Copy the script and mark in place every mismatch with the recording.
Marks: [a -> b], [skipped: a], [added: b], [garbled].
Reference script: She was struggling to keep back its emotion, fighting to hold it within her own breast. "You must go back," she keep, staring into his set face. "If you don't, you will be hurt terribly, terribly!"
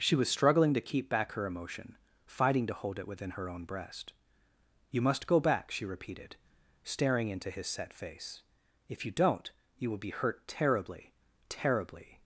She was struggling to keep back [its -> her] emotion, fighting to hold it within her own breast. "You must go back," she [keep, -> repeated] staring into his set face. "If you don't, you will be hurt terribly, terribly!"